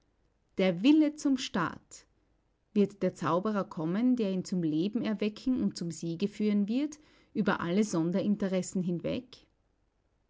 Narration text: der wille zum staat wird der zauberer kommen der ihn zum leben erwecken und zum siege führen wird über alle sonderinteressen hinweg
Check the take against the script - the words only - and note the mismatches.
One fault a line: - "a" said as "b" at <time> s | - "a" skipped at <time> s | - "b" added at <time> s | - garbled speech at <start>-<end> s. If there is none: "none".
none